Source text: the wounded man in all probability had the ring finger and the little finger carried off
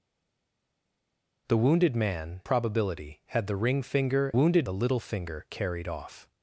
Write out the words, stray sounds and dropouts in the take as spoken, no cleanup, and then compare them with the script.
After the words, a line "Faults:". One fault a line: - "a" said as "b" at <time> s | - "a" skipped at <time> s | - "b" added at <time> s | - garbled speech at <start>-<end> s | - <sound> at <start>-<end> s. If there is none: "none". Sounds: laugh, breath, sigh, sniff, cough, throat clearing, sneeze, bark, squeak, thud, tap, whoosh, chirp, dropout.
the wounded man probability had the ring finger wounded the little finger carried off
Faults:
- "in all" skipped at 2.4 s
- "and" said as "wounded" at 4.3 s